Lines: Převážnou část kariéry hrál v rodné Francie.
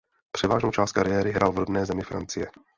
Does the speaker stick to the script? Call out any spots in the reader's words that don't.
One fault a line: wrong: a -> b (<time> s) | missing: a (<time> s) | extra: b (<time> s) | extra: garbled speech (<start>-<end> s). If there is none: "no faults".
extra: zemi (1.8 s)